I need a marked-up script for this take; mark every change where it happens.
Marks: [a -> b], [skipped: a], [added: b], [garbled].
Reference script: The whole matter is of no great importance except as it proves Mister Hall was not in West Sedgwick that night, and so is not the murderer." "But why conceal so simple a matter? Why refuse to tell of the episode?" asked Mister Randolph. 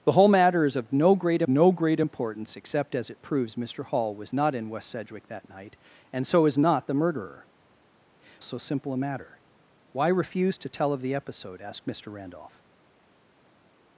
The whole matter is of no great [added: no great] importance except as it proves Mister Hall was not in West Sedgwick that night, and so is not the murderer." [skipped: "But why conceal] so simple a matter? Why refuse to tell of the episode?" asked Mister Randolph.